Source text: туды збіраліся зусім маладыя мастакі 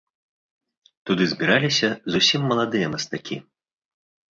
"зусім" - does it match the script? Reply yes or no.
yes